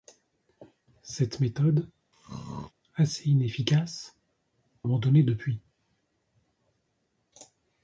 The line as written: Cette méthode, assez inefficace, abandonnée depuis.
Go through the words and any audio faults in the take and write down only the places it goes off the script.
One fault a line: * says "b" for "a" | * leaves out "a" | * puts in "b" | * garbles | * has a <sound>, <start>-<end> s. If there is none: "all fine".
* has a throat clearing, 2.1-2.7 s